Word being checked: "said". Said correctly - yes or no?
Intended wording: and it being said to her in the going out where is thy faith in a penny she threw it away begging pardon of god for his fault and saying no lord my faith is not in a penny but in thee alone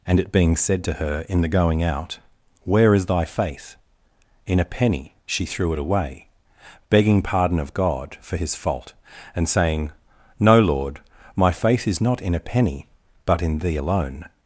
yes